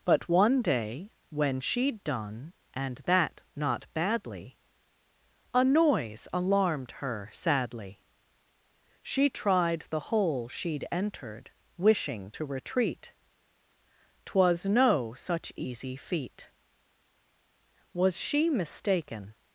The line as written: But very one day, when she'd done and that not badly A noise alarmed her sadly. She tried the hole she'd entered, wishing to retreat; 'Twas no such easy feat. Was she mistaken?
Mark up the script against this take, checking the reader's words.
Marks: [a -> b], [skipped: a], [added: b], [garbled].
But [skipped: very] one day, when she'd done and that not badly A noise alarmed her sadly. She tried the hole she'd entered, wishing to retreat; 'Twas no such easy feat. Was she mistaken?